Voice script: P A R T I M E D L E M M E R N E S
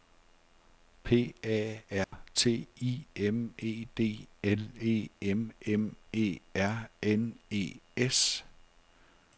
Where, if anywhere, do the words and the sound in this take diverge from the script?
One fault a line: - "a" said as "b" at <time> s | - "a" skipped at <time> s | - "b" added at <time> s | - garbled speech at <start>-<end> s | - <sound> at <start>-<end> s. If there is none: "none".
- dropout at 2.0-2.1 s